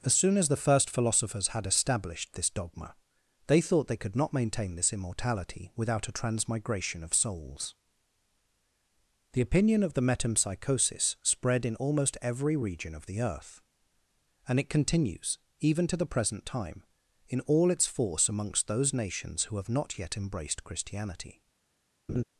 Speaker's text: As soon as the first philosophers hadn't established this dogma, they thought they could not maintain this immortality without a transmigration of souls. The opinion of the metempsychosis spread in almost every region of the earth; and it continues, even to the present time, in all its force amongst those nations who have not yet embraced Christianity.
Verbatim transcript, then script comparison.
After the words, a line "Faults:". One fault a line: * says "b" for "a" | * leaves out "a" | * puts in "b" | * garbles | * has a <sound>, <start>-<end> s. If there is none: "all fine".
As soon as the first philosophers had established this dogma, they thought they could not maintain this immortality without a transmigration of souls. The opinion of the metempsychosis spread in almost every region of the earth; and it continues, even to the present time, in all its force amongst those nations who have not yet embraced Christianity.
Faults:
* says "had" for "hadn't"
* has a laugh, 22.1-22.2 s